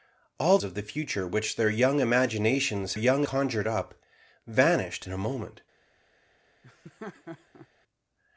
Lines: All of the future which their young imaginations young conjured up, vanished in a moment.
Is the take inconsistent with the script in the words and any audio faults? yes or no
yes